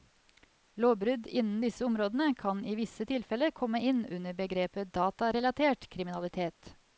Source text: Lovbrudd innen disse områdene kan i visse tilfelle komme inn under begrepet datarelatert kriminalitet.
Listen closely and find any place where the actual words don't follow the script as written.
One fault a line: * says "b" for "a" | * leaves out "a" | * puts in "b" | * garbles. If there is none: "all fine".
all fine